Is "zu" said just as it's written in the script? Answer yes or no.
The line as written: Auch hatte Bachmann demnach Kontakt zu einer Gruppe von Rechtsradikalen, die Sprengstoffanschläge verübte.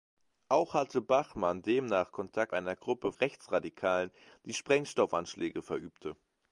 no